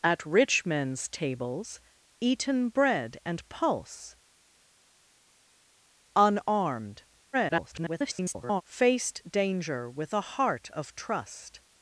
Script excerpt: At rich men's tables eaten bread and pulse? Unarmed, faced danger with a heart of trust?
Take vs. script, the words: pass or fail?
fail